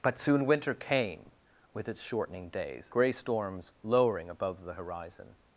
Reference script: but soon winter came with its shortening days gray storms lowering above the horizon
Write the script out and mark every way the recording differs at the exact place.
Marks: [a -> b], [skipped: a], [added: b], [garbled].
but soon winter came with its shortening days gray storms lowering above the horizon